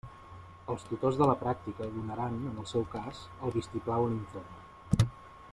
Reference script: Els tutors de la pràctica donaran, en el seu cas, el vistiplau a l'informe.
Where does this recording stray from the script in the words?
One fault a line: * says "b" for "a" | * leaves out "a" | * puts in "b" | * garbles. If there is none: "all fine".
all fine